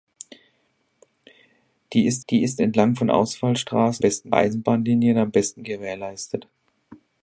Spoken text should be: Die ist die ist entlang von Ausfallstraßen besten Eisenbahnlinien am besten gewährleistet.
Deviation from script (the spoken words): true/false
false